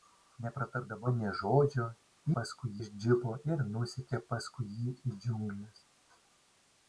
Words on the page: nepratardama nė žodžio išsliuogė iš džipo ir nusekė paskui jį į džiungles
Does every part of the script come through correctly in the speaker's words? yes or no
no